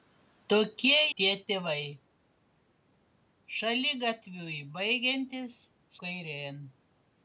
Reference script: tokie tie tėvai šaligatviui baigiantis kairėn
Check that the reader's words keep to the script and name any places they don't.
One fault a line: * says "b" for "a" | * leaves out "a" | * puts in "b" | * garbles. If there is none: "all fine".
all fine